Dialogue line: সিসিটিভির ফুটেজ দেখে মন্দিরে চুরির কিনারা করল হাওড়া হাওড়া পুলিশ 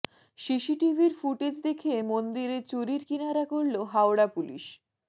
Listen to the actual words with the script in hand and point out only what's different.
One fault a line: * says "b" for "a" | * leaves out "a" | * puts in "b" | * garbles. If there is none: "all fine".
* leaves out "হাওড়া"